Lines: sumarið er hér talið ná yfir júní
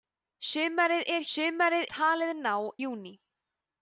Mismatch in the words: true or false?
true